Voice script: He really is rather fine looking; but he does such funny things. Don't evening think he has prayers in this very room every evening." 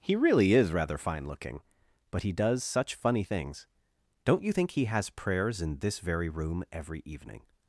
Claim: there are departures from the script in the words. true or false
true